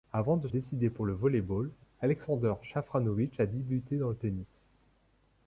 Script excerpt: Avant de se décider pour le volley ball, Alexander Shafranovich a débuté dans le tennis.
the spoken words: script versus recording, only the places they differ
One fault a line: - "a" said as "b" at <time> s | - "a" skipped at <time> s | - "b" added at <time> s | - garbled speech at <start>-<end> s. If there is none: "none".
- "se" skipped at 0.5 s